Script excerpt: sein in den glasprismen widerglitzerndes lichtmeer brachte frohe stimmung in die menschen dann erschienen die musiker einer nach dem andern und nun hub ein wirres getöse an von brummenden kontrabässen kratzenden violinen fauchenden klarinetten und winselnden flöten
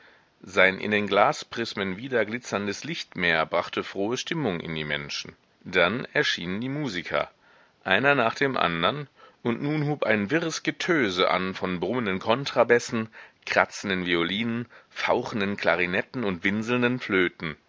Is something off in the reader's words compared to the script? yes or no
no